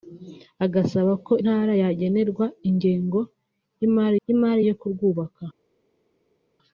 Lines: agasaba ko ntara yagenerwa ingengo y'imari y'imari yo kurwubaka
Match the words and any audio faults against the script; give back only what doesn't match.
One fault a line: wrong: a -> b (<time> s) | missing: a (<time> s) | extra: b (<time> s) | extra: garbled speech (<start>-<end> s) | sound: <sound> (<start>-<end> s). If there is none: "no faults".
no faults